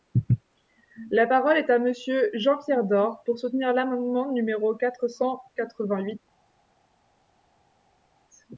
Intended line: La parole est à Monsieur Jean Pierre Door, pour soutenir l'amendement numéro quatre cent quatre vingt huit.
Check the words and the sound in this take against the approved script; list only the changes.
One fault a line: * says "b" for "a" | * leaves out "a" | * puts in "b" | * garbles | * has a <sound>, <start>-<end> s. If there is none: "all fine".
all fine